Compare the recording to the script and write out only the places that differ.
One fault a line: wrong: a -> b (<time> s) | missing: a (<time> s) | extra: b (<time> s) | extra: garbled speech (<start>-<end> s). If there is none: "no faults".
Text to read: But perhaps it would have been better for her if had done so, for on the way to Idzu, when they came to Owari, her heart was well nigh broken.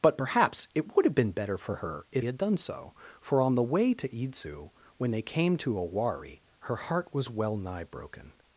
no faults